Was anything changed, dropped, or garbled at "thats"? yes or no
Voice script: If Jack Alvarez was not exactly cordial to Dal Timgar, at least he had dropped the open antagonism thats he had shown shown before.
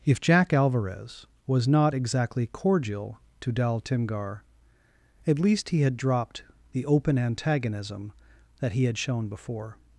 yes